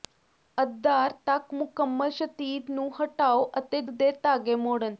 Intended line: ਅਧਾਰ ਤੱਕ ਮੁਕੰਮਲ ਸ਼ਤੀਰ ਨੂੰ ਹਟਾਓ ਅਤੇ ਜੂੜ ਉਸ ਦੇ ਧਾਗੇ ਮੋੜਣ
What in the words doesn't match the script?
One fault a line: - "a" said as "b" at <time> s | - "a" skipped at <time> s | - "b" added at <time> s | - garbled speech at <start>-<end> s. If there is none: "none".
- "ਜੂੜ ਉਸ" skipped at 3.8 s